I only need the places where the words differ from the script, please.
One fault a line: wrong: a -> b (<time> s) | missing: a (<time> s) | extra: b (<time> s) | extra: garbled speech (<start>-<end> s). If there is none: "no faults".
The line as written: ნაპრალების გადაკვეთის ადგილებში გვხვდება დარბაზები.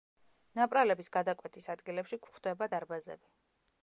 no faults